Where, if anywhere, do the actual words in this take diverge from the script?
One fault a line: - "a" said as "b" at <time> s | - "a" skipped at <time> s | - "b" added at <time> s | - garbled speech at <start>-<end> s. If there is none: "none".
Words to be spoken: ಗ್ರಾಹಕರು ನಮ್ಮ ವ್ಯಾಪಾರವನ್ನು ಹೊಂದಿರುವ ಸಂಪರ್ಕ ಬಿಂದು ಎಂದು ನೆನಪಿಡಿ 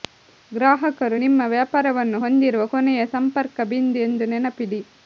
- "ನಮ್ಮ" said as "ನಿಮ್ಮ" at 1.2 s
- "ಕೊನೆಯ" added at 2.7 s